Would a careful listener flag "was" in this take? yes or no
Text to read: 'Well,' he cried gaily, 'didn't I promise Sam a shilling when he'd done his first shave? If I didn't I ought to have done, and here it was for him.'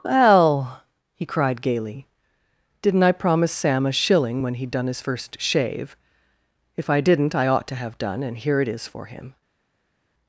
yes